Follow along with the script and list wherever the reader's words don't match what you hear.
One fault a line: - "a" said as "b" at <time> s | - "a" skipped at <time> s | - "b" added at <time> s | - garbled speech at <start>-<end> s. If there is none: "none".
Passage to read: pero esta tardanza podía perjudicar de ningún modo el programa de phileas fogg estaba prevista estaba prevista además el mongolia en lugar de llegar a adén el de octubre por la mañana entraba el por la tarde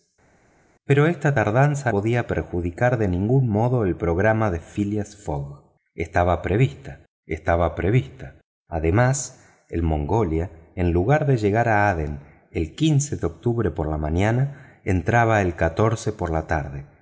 none